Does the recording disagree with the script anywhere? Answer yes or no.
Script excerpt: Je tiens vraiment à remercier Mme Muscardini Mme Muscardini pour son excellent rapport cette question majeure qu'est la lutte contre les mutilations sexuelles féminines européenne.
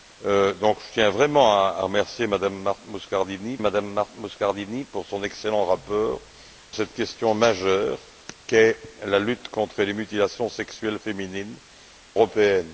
no